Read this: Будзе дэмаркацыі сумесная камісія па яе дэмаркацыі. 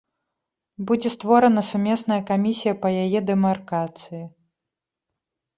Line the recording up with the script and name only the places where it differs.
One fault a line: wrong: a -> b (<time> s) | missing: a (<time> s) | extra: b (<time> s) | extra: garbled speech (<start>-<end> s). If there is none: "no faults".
wrong: дэмаркацыі -> створана (1.1 s)